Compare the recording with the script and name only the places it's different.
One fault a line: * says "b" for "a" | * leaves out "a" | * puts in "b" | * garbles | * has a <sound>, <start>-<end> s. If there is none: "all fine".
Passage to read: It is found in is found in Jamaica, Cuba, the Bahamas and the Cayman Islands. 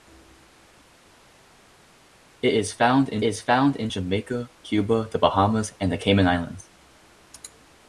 all fine